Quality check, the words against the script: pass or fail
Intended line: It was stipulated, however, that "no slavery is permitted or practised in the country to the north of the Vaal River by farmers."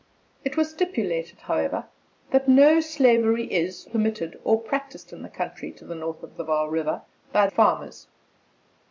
pass